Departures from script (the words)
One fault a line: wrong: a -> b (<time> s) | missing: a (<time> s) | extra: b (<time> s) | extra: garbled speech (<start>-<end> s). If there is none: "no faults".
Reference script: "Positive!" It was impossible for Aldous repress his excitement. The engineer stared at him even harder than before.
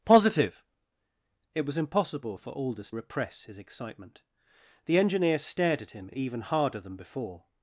no faults